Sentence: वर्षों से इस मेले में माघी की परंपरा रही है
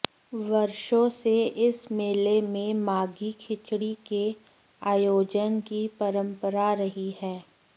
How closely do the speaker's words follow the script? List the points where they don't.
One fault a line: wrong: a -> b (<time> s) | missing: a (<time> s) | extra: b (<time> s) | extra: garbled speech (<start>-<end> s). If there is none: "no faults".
extra: खिचड़ी के आयोजन (3.4 s)